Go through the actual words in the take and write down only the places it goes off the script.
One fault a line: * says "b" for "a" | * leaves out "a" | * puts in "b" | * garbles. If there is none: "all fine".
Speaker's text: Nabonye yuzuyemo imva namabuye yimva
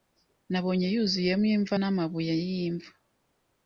all fine